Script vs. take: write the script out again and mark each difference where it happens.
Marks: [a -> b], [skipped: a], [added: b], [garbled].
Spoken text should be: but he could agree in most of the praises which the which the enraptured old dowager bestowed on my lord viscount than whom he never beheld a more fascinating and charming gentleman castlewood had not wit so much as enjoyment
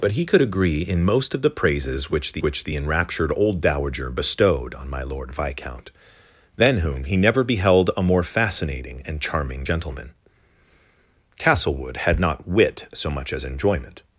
but he could agree in most of the praises which the which the enraptured old dowager bestowed on my lord viscount than whom he never beheld a more fascinating and charming gentleman castlewood had not wit so much as enjoyment